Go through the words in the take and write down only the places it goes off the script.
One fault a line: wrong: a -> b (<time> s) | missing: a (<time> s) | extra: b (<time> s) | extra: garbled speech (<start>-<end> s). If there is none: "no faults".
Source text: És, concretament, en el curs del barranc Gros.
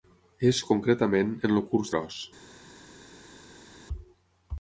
missing: del barranc (1.9 s)